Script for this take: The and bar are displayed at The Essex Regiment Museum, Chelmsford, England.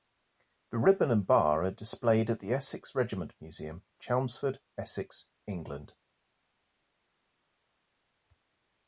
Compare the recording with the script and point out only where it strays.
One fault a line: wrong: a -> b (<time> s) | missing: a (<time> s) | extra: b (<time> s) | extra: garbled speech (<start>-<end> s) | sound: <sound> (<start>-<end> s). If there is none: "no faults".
extra: ribbon (0.8 s)
extra: Essex (4.8 s)